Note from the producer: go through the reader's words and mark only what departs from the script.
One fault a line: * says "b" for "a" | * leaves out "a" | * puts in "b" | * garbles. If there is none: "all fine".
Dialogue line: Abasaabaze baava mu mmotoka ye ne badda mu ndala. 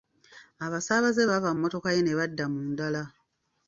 all fine